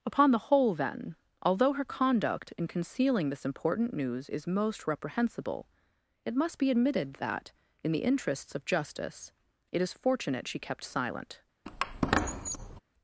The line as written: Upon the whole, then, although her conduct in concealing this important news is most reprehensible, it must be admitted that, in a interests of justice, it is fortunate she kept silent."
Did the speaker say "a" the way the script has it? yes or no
no